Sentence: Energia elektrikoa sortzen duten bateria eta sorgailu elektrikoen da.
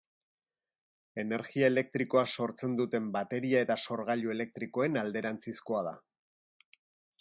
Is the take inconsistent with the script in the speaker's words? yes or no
yes